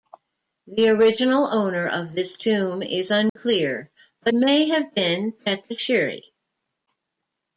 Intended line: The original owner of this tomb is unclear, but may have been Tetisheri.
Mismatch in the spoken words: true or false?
false